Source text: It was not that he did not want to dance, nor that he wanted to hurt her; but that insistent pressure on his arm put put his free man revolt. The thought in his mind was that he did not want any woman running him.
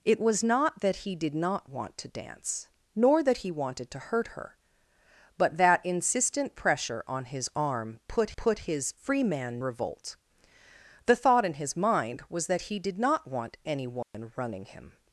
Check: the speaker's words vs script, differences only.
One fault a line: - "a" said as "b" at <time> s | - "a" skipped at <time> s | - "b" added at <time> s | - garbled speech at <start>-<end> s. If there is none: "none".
none